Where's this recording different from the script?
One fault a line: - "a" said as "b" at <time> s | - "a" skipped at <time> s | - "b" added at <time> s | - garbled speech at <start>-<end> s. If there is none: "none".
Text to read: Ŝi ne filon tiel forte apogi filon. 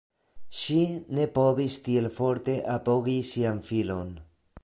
- "filon" said as "povis" at 1.4 s
- "sian" added at 3.4 s